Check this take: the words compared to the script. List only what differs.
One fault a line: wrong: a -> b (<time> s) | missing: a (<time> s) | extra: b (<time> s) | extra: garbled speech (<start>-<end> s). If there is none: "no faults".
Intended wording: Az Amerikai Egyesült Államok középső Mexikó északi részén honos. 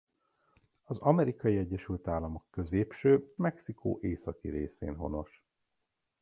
no faults